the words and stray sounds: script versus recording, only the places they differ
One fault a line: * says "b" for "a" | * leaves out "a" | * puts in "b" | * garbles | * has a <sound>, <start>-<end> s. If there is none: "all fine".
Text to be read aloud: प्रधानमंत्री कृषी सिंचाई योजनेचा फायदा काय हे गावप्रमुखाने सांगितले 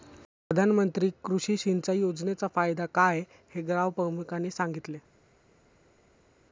all fine